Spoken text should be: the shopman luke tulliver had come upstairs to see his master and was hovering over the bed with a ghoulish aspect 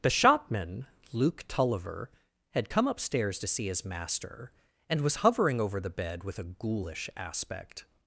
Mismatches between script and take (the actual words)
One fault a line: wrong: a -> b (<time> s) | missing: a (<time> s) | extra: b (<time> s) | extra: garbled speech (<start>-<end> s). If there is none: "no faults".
no faults